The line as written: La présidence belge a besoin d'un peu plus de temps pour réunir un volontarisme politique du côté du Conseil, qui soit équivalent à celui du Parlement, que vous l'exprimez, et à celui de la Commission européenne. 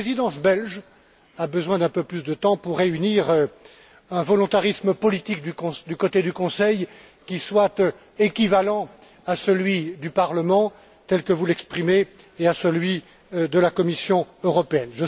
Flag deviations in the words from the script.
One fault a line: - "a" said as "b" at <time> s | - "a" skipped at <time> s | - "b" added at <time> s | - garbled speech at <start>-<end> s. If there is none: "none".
- "tel" added at 11.1 s